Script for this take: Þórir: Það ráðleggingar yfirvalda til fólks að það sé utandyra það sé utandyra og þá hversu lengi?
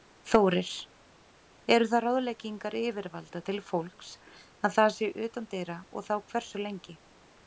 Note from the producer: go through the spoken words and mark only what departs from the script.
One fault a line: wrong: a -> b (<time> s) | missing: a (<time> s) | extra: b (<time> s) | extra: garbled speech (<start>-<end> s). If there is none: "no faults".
extra: Eru (1.8 s)
missing: það sé utandyra (5.8 s)